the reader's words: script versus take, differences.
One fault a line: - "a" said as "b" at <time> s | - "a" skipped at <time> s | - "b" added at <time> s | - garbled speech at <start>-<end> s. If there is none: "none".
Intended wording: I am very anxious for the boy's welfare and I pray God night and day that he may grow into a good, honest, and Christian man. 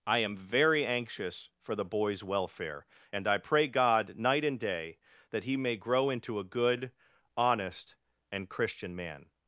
none